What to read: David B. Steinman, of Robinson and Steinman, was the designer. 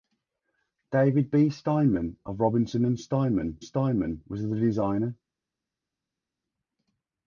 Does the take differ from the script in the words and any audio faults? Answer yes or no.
yes